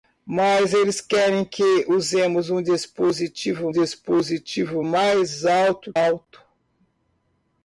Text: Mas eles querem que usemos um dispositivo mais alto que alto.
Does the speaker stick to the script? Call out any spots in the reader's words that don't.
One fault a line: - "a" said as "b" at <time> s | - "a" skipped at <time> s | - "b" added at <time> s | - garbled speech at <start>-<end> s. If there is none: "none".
- "dispositivo" added at 3.7 s
- "que" skipped at 5.9 s